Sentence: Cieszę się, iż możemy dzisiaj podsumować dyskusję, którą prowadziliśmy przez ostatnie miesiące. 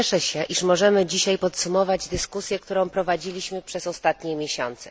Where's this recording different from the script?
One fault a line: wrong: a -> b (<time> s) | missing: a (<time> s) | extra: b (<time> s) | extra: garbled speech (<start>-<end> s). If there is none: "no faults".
no faults